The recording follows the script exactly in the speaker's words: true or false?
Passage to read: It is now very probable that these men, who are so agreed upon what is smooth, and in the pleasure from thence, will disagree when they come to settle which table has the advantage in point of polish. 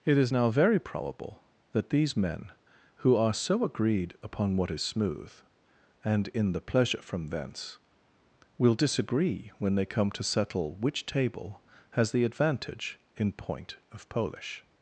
true